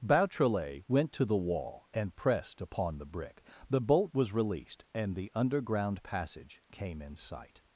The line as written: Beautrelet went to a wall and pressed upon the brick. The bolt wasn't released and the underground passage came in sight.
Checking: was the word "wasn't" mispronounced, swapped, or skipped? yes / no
yes